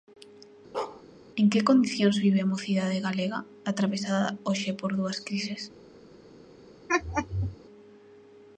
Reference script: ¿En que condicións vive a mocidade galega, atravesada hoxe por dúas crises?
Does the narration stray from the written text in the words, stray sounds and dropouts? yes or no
yes